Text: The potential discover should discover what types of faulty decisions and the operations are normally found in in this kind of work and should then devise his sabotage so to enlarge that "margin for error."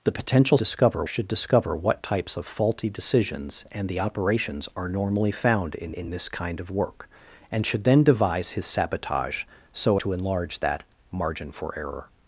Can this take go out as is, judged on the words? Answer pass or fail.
pass